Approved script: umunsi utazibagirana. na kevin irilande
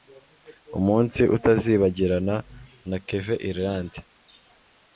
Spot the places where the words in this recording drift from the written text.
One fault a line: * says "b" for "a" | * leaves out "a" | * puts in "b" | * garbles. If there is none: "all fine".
all fine